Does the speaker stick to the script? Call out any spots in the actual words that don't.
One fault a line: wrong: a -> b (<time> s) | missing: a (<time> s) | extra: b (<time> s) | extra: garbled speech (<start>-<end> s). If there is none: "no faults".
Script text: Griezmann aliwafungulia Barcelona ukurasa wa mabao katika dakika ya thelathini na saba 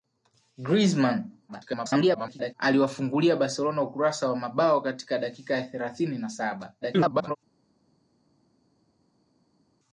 extra: garbled speech (1.5-2.5 s)
extra: garbled speech (6.8-7.4 s)